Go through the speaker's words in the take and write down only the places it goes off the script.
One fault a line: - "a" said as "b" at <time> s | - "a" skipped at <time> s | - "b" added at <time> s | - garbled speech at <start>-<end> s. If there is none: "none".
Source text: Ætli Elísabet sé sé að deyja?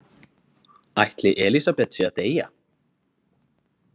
- "sé" skipped at 2.1 s